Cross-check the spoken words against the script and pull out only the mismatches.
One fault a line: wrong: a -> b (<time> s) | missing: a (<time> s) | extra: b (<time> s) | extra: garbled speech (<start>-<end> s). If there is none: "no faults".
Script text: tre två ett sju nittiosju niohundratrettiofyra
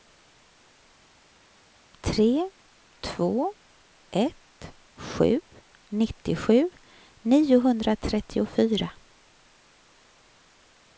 no faults